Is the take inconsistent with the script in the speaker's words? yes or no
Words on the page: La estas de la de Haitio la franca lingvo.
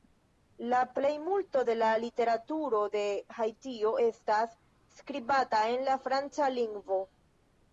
yes